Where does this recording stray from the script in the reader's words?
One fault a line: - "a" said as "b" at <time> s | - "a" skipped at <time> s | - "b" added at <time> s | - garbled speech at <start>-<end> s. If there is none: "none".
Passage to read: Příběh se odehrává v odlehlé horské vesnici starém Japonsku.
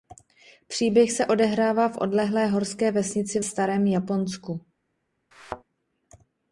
none